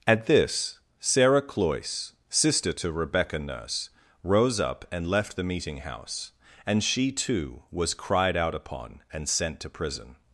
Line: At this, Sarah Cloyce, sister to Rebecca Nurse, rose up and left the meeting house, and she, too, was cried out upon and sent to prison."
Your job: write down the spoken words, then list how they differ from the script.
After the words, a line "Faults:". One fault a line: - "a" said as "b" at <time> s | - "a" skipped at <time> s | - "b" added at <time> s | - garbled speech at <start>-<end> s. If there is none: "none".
At this, Sarah Cloyce, sister to Rebecca Nurse, rose up and left the meeting house, and she, too, was cried out upon and sent to prison."
Faults:
none